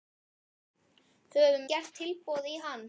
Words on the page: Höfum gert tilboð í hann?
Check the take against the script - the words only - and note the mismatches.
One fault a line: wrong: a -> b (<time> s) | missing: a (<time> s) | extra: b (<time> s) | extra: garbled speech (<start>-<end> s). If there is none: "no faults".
no faults